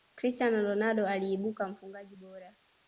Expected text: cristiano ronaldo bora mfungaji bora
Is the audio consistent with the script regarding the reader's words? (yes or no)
no